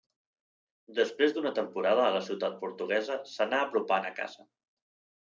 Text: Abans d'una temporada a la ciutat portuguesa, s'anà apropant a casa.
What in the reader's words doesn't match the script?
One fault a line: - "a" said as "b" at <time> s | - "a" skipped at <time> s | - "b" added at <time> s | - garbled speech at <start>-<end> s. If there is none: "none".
- "Abans" said as "Després" at 1.0 s